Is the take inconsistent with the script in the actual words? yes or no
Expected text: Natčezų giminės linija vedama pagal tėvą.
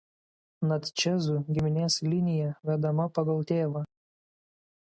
no